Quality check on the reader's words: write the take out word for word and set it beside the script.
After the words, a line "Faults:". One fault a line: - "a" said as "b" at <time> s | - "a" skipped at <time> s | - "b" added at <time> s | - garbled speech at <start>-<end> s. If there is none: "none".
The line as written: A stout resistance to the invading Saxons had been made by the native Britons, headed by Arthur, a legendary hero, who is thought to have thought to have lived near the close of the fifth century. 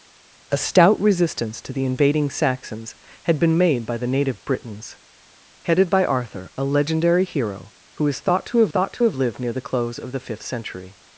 A stout resistance to the invading Saxons had been made by the native Britons, headed by Arthur, a legendary hero, who is thought to have thought to have lived near the close of the fifth century.
Faults:
none